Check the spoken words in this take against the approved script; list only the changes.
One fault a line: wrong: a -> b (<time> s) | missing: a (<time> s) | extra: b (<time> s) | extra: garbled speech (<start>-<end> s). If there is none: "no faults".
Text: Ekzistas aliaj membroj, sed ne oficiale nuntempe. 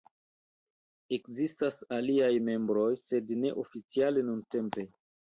no faults